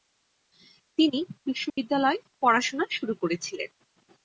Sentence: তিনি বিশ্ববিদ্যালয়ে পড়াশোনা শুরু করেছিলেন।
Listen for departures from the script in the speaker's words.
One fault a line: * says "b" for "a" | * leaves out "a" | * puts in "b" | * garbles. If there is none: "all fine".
all fine